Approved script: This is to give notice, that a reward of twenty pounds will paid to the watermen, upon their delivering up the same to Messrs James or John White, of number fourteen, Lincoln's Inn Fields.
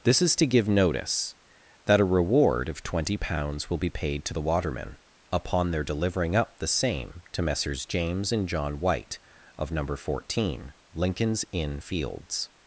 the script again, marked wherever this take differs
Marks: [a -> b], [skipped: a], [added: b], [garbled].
This is to give notice, that a reward of twenty pounds will [added: be] paid to the watermen, upon their delivering up the same to Messrs James [or -> and] John White, of number fourteen, Lincoln's Inn Fields.